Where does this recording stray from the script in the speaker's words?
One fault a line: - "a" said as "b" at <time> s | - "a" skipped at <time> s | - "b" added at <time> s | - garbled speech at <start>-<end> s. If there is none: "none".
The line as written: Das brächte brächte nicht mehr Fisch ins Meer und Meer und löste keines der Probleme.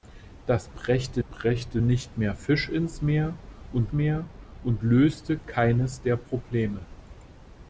none